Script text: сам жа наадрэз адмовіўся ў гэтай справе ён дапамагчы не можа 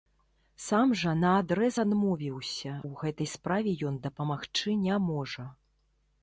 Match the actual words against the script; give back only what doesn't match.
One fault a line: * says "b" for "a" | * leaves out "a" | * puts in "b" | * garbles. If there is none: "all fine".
all fine